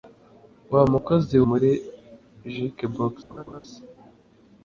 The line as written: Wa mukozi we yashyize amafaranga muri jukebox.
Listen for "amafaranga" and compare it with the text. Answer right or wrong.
wrong